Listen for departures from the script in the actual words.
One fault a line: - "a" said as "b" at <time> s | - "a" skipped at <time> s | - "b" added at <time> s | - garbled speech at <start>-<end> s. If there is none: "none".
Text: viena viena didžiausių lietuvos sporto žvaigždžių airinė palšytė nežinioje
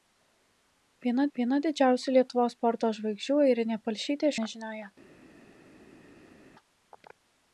none